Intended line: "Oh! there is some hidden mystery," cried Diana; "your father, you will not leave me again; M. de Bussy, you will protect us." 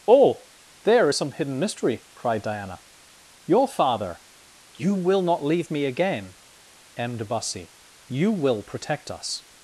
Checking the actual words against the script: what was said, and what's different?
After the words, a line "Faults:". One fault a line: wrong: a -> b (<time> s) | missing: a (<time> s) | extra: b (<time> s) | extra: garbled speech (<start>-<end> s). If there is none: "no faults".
"Oh! there is some hidden mystery," cried Diana; "your father, you will not leave me again; M. de Bussy, you will protect us."
Faults:
no faults